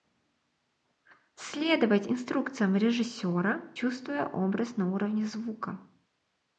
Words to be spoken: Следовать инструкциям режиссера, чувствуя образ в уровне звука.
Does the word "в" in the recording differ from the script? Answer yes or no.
yes